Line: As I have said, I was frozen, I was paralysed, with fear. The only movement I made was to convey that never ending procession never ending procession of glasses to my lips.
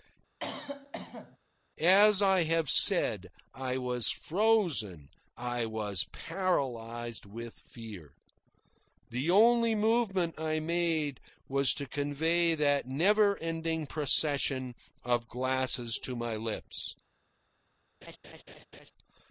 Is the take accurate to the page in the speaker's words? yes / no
no